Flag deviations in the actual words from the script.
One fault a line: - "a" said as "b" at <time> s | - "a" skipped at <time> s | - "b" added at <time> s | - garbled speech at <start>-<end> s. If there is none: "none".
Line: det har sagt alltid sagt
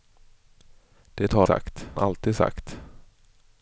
none